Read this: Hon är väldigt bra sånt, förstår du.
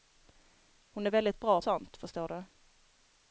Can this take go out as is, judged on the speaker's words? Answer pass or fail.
pass